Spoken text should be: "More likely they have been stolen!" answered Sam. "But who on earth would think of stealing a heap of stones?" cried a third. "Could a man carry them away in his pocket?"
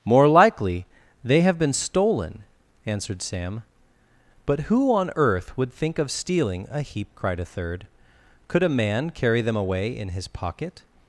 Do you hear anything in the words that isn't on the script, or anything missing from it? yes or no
yes